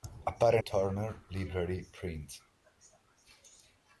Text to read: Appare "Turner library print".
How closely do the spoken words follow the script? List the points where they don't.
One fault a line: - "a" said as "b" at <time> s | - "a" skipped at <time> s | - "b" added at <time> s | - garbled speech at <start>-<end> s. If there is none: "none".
none